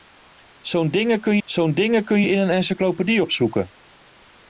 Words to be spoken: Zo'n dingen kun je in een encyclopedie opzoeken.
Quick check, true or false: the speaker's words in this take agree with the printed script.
false